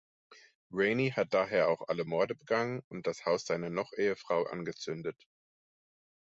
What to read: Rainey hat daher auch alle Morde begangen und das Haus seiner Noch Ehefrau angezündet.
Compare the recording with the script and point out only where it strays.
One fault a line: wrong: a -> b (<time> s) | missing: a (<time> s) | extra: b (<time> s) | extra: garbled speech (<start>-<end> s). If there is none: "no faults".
no faults